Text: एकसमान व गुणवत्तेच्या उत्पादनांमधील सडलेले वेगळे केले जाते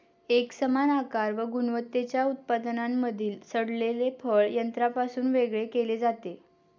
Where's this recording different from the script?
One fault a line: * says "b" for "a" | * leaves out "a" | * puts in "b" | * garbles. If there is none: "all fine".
* puts in "आकार"
* puts in "फळ यंत्रापासून"